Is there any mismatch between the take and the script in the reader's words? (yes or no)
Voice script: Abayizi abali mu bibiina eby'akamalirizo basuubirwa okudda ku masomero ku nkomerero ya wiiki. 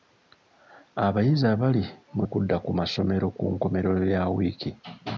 yes